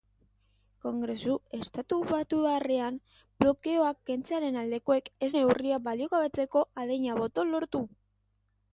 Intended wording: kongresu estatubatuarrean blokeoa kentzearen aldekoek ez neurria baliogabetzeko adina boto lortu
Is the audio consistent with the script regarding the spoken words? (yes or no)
yes